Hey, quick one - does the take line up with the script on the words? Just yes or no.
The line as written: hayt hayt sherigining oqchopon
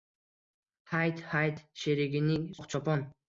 yes